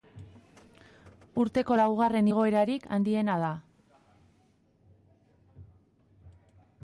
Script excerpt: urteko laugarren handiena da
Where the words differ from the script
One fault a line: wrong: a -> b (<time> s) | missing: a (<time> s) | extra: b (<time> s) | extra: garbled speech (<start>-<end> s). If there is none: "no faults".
extra: igoerarik (2.3 s)